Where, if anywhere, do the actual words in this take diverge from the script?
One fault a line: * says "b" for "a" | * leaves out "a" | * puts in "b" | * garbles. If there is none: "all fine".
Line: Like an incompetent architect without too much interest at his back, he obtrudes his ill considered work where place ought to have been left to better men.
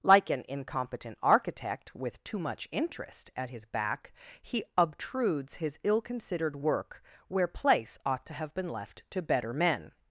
* says "with" for "without"